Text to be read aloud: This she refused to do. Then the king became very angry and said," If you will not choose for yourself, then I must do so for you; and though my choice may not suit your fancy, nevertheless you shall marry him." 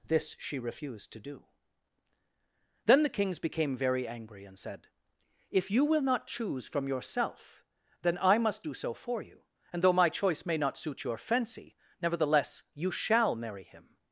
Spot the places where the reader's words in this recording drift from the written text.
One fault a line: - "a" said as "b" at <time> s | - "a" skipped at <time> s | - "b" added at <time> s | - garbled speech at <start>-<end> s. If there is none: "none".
- "king" said as "kings" at 3.1 s
- "for" said as "from" at 6.7 s